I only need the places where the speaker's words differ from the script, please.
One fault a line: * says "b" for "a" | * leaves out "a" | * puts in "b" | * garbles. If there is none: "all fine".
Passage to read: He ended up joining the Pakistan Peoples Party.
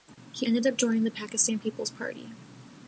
all fine